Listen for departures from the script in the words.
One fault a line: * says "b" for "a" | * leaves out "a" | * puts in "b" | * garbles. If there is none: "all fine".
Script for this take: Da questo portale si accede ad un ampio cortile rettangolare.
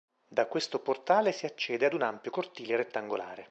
all fine